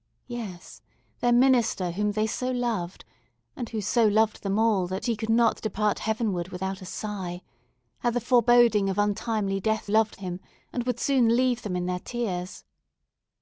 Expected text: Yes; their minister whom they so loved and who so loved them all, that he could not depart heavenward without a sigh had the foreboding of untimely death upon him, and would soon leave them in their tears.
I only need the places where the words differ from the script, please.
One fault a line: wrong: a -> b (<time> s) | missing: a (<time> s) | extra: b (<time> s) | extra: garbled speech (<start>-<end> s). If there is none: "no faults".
wrong: upon -> loved (9.8 s)